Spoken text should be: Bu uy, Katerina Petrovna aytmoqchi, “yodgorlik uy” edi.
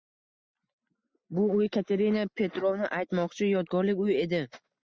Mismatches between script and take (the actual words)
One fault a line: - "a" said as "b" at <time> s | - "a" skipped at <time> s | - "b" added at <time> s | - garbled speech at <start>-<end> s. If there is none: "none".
none